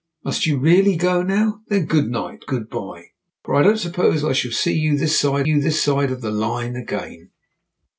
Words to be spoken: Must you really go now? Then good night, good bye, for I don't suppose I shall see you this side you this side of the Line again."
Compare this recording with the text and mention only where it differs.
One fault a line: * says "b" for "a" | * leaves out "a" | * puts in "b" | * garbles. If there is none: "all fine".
all fine